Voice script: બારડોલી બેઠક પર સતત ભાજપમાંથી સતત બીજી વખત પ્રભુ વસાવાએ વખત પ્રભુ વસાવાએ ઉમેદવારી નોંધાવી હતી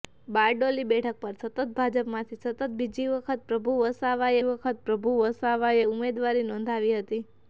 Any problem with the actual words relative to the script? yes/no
no